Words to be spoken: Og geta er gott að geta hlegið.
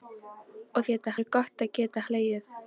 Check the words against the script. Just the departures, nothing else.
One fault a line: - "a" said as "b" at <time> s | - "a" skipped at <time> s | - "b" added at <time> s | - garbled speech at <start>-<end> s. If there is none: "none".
none